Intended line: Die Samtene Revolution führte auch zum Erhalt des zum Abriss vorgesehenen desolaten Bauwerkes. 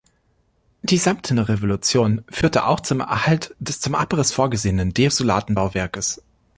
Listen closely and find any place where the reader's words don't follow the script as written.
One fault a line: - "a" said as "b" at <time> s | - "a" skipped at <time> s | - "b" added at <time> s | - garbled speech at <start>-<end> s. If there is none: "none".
none